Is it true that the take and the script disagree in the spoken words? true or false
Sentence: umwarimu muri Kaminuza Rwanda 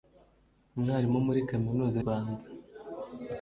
false